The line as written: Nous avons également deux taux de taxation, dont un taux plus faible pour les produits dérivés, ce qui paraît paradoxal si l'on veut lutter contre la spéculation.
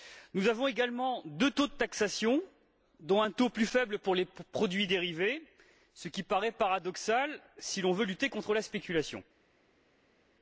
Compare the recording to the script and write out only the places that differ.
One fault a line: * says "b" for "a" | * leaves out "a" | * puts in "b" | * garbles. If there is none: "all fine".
all fine